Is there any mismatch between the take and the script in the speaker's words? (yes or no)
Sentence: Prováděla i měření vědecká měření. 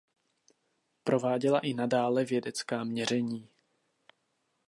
yes